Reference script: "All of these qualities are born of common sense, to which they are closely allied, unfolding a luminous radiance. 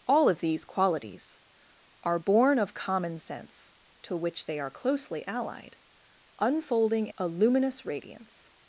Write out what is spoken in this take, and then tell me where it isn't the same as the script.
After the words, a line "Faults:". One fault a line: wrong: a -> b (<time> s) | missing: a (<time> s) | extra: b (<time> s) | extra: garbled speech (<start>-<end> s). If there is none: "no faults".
"All of these qualities are born of common sense, to which they are closely allied, unfolding a luminous radiance.
Faults:
no faults